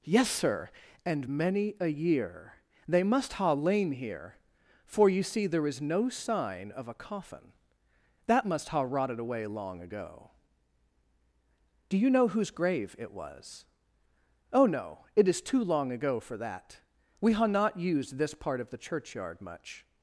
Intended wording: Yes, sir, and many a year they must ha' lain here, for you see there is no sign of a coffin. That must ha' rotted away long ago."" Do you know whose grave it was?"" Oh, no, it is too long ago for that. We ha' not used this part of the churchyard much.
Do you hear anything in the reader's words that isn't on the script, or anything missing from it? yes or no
no